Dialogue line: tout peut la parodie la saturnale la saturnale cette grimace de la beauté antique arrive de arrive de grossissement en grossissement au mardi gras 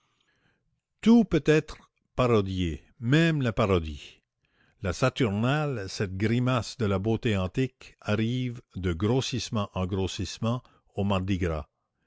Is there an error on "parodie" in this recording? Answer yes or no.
yes